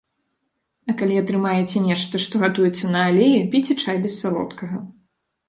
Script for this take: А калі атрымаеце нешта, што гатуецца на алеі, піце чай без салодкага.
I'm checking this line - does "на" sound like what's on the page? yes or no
yes